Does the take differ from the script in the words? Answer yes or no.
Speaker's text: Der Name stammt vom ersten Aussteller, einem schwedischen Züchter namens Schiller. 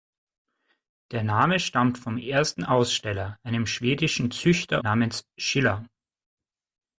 no